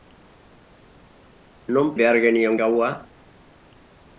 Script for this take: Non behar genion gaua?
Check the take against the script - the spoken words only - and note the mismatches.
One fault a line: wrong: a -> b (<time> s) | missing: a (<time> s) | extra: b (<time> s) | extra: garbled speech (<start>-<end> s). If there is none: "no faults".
no faults